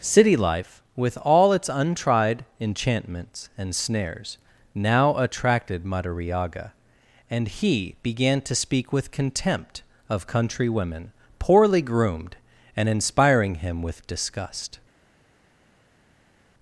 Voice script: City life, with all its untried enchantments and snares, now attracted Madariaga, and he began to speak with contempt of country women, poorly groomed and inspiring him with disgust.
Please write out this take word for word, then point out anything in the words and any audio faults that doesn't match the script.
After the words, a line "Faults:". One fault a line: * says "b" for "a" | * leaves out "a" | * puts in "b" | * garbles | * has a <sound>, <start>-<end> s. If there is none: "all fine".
City life, with all its untried enchantments and snares, now attracted Madariaga, and he began to speak with contempt of country women, poorly groomed and inspiring him with disgust.
Faults:
all fine